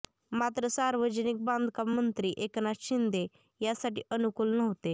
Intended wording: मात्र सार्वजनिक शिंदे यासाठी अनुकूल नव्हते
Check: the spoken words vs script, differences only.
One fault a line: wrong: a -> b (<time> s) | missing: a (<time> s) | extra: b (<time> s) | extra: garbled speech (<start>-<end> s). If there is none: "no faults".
extra: बांधकाम मंत्री एकनाथ (1.4 s)